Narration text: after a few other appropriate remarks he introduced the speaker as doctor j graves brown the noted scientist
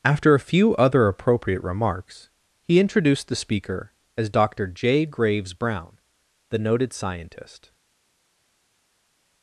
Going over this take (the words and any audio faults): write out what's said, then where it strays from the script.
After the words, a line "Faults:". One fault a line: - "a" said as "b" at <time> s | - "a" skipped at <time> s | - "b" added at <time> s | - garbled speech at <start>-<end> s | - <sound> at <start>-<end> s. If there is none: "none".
after a few other appropriate remarks he introduced the speaker as doctor j graves brown the noted scientist
Faults:
none